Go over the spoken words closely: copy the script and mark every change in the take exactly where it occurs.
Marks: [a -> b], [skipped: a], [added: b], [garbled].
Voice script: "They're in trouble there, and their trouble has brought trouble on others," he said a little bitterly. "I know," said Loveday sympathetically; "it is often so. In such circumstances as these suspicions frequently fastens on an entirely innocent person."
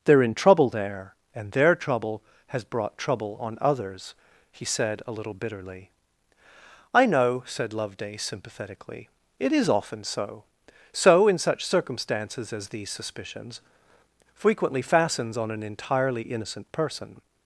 "They're in trouble there, and their trouble has brought trouble on others," he said a little bitterly. "I know," said Loveday sympathetically; "it is often so. [added: so] In such circumstances as these suspicions frequently fastens on an entirely innocent person."